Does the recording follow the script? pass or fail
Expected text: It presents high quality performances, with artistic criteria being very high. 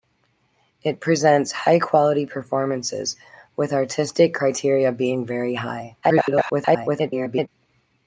fail